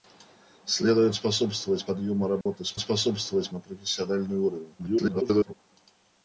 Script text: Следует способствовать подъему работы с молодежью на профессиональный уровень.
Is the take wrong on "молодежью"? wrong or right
wrong